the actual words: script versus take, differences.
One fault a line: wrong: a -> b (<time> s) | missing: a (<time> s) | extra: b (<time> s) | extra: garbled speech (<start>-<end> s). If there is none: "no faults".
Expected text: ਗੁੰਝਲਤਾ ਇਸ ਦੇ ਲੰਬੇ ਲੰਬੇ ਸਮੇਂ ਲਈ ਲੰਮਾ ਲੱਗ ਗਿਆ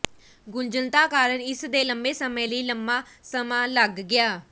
extra: ਕਾਰਨ (1.0 s)
missing: ਲੰਬੇ (2.1 s)
extra: ਸਮਾਂ (3.2 s)